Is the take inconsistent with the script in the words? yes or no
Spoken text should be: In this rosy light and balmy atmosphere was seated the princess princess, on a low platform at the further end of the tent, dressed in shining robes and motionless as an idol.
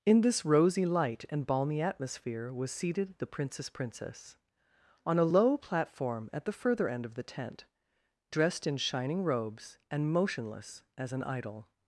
no